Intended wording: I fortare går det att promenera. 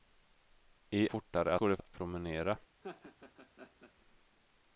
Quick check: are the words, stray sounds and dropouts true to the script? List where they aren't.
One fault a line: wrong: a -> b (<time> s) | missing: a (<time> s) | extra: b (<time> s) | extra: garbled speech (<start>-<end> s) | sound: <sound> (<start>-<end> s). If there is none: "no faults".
sound: laugh (2.8-3.9 s)